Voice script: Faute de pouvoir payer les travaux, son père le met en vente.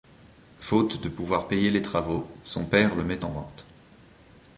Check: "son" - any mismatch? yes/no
no